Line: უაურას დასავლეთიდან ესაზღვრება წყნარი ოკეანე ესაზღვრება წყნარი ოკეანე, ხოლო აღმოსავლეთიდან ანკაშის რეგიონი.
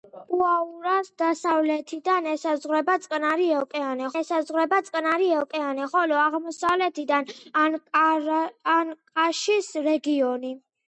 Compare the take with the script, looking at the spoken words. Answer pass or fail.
pass